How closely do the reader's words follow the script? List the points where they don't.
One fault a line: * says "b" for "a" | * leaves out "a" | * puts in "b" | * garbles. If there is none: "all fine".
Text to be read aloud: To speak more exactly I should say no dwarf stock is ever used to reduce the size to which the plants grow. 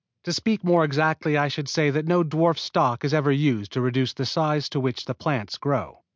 * puts in "that"